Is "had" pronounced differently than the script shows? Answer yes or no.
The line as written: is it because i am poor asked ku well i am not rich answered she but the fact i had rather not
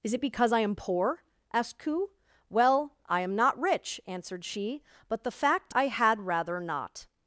no